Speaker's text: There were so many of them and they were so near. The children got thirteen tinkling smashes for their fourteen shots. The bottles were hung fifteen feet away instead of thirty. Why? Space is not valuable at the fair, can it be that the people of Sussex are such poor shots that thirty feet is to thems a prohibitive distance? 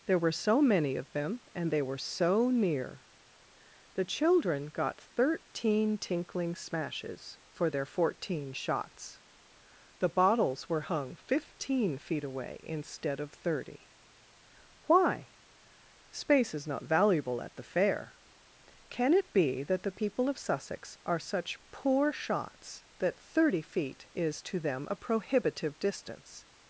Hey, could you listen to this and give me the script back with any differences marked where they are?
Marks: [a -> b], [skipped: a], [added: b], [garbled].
There were so many of them and they were so near. The children got thirteen tinkling smashes for their fourteen shots. The bottles were hung fifteen feet away instead of thirty. Why? Space is not valuable at the fair, can it be that the people of Sussex are such poor shots that thirty feet is to [thems -> them] a prohibitive distance?